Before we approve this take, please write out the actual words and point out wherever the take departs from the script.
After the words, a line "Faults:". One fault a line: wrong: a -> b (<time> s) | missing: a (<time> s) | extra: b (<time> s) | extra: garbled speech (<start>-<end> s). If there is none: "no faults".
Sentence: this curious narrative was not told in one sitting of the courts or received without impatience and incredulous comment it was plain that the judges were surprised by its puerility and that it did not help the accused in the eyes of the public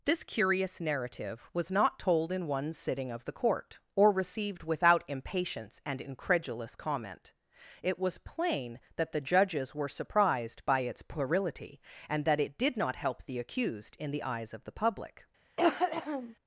this curious narrative was not told in one sitting of the court or received without impatience and incredulous comment it was plain that the judges were surprised by its puerility and that it did not help the accused in the eyes of the public
Faults:
wrong: courts -> court (3.3 s)